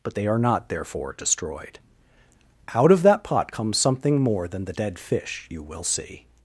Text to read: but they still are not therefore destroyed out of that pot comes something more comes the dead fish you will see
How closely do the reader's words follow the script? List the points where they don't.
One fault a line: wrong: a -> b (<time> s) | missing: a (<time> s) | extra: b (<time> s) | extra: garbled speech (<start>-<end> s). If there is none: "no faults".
missing: still (0.3 s)
wrong: comes -> than (4.5 s)